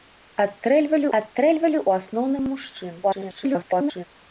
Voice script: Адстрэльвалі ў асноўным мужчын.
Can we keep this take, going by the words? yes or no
no